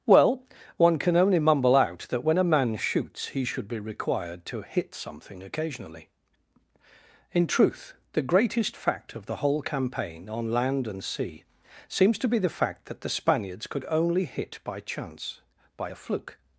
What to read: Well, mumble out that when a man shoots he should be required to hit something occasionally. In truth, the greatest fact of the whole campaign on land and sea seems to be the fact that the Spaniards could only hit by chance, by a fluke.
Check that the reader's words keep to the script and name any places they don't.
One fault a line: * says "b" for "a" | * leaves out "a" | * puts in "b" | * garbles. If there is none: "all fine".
* puts in "one can only"